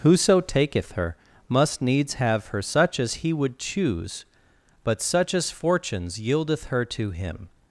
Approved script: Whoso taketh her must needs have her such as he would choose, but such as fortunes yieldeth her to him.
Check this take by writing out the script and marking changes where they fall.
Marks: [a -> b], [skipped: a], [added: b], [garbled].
Whoso taketh her must needs have her such as he would choose, but such as fortunes yieldeth her to him.